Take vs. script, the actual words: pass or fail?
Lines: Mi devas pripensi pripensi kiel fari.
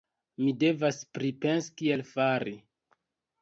fail